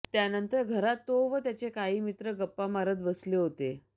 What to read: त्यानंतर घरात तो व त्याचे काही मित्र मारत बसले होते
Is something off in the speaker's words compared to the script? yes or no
yes